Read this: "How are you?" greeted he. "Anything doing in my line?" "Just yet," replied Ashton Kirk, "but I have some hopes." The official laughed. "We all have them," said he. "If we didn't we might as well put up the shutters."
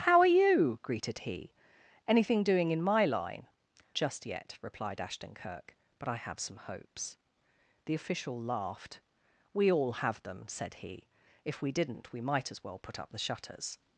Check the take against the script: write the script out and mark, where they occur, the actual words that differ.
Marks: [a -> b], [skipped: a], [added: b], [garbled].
"How are you?" greeted he. "Anything doing in my line?" "Just yet," replied Ashton Kirk, "but I have some hopes." The official laughed. "We all have them," said he. "If we didn't we might as well put up the shutters."